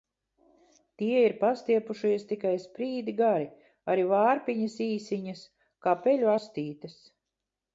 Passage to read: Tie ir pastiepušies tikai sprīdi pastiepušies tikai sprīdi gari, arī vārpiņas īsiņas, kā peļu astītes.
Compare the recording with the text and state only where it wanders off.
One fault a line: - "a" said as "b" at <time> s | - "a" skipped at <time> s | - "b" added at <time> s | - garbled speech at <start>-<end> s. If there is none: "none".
- "pastiepušies tikai sprīdi" skipped at 3.1 s